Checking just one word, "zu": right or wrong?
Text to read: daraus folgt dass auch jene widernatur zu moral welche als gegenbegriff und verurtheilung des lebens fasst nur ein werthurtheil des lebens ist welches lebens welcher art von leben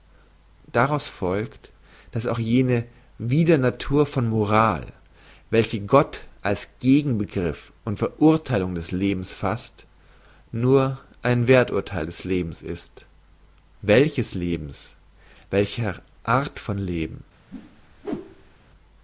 wrong